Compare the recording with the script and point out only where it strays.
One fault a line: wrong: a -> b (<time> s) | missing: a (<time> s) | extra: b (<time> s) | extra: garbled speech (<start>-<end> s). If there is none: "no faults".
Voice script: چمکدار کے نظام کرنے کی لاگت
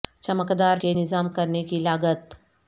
no faults